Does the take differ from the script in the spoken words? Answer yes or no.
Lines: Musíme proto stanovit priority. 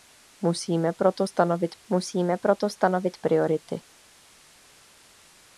yes